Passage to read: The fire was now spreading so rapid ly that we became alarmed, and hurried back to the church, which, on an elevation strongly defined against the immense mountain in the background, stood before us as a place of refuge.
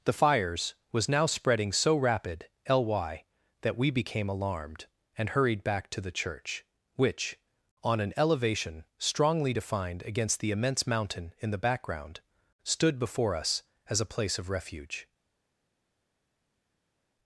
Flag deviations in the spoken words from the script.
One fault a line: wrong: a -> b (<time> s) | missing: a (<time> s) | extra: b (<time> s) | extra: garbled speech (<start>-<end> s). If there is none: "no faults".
wrong: fire -> fires (0.1 s)